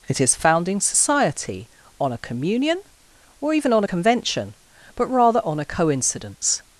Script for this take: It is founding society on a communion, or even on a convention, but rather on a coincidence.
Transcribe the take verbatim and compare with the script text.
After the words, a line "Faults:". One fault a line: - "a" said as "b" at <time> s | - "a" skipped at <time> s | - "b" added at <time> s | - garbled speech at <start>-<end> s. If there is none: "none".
It is founding society on a communion, or even on a convention, but rather on a coincidence.
Faults:
none